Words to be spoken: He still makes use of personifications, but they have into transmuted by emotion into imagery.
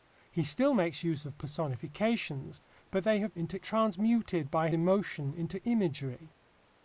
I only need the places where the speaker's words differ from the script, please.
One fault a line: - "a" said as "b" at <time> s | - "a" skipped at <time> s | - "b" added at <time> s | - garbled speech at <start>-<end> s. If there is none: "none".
none